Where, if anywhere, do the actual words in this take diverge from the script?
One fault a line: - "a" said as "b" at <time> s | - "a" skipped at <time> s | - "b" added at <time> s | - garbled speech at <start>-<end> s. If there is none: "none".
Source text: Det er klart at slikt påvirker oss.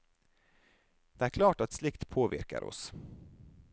none